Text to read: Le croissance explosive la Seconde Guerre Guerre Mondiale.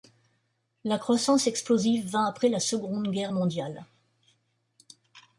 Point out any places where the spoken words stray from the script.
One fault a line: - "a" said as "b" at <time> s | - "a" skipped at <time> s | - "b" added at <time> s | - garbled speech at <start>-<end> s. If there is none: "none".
- "Le" said as "La" at 0.8 s
- "vint après" added at 2.1 s
- "Guerre" skipped at 3.3 s